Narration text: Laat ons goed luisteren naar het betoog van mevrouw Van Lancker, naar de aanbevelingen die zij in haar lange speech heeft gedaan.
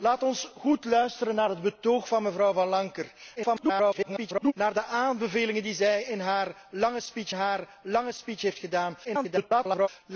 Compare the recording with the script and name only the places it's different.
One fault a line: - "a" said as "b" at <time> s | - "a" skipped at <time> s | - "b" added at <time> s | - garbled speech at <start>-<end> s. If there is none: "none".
- garbled speech at 3.4-4.5 s
- "haar lange speech" added at 7.3 s
- garbled speech at 9.0-9.9 s